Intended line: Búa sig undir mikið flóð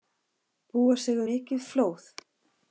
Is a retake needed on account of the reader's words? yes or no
yes